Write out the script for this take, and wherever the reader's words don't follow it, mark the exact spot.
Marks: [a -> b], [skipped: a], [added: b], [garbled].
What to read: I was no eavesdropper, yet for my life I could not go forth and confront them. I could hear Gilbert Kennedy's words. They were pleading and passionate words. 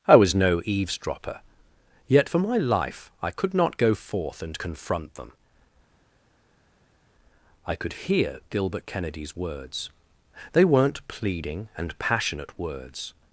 I was no eavesdropper, yet for my life I could not go forth and confront them. I could hear Gilbert Kennedy's words. They [were -> weren't] pleading and passionate words.